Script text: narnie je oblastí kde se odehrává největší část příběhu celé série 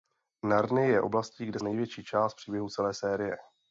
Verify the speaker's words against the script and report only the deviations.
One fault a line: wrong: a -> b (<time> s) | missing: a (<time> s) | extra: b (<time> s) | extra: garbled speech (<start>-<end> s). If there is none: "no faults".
missing: se odehrává (1.6 s)